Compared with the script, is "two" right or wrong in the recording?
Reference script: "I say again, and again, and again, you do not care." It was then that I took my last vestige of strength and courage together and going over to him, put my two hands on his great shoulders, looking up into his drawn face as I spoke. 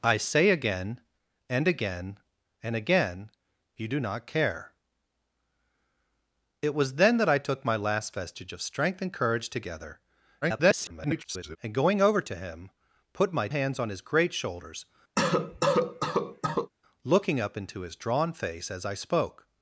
wrong